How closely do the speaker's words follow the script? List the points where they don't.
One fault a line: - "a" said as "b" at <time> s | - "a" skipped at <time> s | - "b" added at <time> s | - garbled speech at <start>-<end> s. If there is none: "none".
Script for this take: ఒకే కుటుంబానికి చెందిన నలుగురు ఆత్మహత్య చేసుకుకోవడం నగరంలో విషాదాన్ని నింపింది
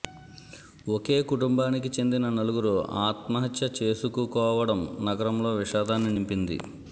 none